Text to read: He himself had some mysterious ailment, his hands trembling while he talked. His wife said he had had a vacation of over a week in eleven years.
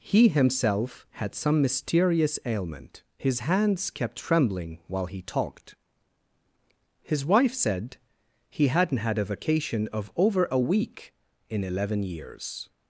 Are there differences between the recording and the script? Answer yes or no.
yes